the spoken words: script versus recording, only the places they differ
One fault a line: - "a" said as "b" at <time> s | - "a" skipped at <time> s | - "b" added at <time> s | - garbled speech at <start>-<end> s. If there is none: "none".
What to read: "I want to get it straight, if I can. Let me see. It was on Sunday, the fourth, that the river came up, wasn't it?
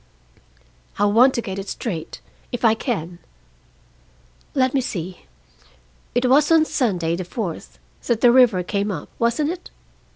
none